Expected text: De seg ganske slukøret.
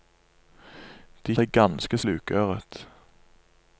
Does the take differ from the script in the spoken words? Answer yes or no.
no